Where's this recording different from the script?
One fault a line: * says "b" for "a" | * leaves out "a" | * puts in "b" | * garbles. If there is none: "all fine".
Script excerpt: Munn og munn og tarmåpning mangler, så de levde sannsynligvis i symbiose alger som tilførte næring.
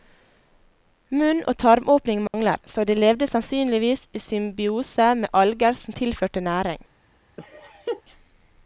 * leaves out "munn og"
* puts in "med"